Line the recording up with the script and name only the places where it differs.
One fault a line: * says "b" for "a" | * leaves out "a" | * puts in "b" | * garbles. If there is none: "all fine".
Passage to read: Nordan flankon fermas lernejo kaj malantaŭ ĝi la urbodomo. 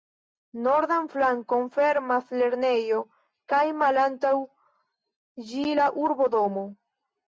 all fine